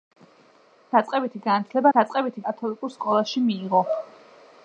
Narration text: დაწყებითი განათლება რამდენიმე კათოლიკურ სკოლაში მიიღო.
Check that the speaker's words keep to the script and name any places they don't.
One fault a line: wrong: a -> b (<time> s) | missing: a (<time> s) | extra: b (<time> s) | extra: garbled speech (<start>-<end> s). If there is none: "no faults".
wrong: რამდენიმე -> დაწყებითი (2.0 s)